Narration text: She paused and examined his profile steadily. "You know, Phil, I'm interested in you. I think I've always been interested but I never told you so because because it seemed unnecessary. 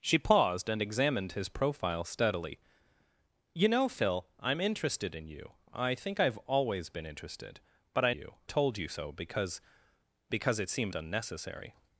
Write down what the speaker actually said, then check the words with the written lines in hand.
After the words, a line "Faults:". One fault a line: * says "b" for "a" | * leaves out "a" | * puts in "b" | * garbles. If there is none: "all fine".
She paused and examined his profile steadily. "You know, Phil, I'm interested in you. I think I've always been interested but I you told you so because because it seemed unnecessary.
Faults:
* says "you" for "never"